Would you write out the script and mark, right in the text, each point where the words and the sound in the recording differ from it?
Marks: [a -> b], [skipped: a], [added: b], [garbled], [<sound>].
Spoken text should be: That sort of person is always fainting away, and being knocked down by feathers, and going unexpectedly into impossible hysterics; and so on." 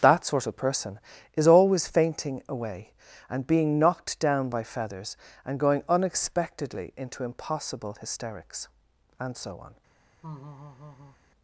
That sort of person is always fainting away, and being knocked down by feathers, and going unexpectedly into impossible hysterics; and so on." [laugh]